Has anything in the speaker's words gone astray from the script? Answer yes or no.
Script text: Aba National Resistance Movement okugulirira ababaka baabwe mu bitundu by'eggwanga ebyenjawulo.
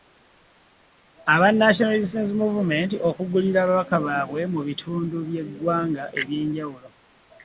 no